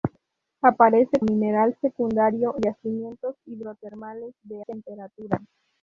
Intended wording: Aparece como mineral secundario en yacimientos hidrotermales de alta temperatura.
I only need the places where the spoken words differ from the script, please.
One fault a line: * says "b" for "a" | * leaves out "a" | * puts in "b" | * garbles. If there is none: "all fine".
* leaves out "como"
* leaves out "en"
* leaves out "alta"